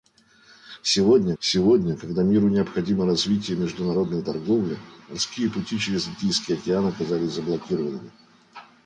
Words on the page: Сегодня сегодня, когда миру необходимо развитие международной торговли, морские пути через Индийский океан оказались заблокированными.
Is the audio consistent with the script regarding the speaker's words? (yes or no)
yes